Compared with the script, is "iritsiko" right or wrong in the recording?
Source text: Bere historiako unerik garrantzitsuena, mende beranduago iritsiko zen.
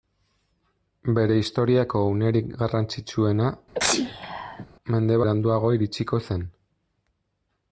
right